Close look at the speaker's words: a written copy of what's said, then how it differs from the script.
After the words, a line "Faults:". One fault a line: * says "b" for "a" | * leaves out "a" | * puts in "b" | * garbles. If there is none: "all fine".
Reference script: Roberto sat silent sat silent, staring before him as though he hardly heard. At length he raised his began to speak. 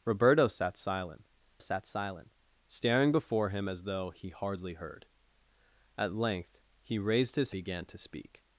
Roberto sat silent sat silent, staring before him as though he hardly heard. At length he raised his began to speak.
Faults:
all fine